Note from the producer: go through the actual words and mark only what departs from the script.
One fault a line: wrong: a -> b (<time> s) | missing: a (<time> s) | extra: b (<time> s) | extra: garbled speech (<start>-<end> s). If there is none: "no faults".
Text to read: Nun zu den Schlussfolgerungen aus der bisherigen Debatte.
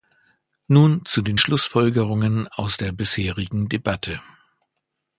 no faults